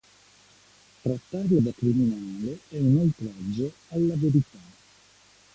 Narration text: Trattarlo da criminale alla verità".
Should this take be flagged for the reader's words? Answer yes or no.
yes